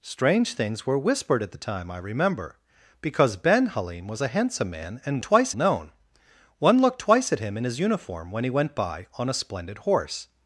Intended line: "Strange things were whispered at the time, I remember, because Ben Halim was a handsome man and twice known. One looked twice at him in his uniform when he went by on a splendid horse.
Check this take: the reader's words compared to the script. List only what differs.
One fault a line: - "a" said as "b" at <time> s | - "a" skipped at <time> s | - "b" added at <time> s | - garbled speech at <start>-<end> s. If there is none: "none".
none